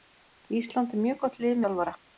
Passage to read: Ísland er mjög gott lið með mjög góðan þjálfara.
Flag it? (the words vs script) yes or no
yes